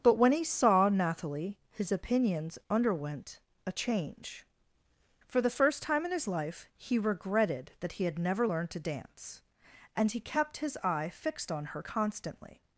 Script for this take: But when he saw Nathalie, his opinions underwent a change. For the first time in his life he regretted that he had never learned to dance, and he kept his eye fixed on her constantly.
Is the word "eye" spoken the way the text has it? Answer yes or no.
yes